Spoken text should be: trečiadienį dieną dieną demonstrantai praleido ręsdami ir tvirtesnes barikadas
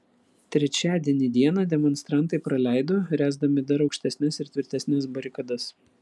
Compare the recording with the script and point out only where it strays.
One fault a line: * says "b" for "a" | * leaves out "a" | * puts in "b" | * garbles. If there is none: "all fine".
* leaves out "dieną"
* puts in "dar aukštesnes"